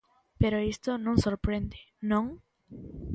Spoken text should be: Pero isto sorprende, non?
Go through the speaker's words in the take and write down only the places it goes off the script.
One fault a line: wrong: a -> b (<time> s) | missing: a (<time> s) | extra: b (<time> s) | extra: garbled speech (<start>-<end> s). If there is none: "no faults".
extra: non (1.0 s)